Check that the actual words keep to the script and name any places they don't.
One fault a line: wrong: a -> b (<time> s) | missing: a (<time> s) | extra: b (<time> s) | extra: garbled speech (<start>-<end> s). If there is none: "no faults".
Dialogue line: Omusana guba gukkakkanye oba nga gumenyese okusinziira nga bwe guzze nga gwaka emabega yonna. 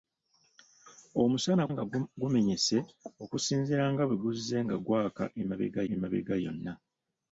missing: guba gukkakkanye oba (1.6 s)
extra: emabega (5.9 s)